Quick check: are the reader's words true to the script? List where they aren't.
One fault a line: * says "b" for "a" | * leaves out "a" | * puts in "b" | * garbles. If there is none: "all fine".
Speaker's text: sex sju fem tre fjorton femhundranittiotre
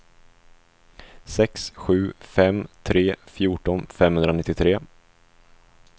all fine